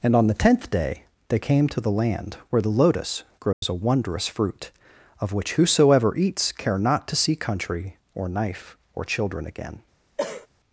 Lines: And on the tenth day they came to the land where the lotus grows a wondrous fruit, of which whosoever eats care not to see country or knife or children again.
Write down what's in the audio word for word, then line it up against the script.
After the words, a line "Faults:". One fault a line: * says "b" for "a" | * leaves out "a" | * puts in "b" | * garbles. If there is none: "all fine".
And on the tenth day they came to the land where the lotus grows a wondrous fruit, of which whosoever eats care not to see country or knife or children again.
Faults:
all fine